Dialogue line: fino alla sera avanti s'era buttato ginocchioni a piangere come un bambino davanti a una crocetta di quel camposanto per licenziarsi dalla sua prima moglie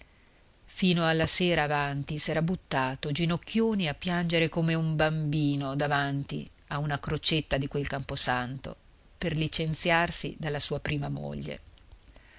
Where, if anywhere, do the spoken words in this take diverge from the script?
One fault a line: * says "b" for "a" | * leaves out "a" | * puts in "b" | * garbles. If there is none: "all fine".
all fine